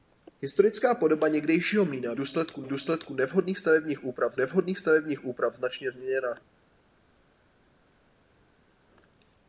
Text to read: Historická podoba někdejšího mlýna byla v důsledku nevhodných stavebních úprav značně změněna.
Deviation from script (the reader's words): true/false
true